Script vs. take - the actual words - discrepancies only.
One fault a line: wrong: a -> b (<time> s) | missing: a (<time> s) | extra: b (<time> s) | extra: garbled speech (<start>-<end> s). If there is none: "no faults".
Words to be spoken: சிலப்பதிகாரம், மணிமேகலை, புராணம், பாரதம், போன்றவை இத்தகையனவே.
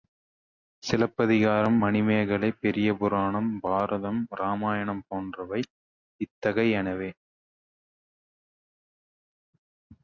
extra: பெரிய (2.5 s)
extra: இராமாயணம் (4.3 s)